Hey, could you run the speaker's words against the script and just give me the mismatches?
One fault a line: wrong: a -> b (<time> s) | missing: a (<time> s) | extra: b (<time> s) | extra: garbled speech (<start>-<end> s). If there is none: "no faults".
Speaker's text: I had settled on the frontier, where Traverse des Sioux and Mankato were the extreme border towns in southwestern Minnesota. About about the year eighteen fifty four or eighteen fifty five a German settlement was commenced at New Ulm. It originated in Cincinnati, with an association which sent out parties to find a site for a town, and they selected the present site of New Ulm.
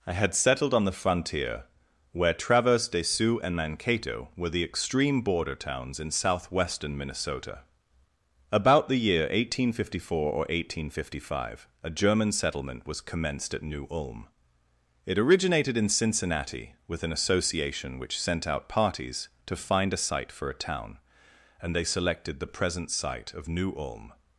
missing: about (8.9 s)